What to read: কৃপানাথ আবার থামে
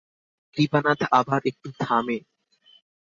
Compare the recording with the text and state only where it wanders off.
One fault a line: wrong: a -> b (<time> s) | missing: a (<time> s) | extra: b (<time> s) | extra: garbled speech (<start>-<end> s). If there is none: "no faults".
extra: একটু (1.4 s)